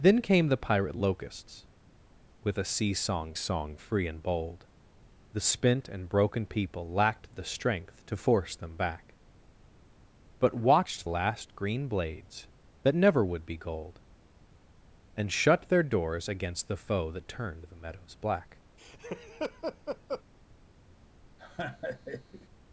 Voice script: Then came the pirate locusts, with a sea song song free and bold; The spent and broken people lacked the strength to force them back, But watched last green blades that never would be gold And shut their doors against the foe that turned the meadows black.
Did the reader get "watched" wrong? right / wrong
right